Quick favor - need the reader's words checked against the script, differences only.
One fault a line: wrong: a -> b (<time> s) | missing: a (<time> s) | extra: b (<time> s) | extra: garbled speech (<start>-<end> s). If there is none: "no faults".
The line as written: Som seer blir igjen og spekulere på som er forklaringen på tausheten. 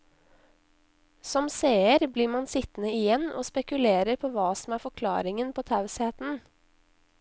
extra: man sittende (2.4 s)
extra: hva (4.4 s)